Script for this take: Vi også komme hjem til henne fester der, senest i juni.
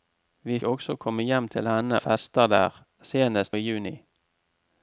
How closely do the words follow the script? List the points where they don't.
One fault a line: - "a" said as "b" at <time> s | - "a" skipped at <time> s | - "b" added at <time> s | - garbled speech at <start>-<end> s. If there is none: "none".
none